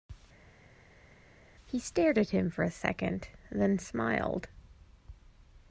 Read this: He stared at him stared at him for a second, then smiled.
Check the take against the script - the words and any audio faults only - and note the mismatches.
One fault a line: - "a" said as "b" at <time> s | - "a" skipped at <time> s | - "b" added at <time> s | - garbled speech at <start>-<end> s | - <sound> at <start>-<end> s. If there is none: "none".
- "stared at him" skipped at 2.5 s